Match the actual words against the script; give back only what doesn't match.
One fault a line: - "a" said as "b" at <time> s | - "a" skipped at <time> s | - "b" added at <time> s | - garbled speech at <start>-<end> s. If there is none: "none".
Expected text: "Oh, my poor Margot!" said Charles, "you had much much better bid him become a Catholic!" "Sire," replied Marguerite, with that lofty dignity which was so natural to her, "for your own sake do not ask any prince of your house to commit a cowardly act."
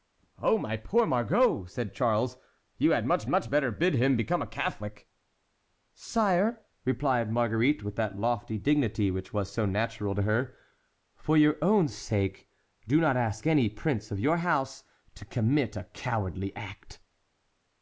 none